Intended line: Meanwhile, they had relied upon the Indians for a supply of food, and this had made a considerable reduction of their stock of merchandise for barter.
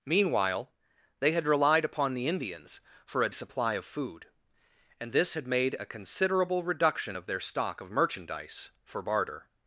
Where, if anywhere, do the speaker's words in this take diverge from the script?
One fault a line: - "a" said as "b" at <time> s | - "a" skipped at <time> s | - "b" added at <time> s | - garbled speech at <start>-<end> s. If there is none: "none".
none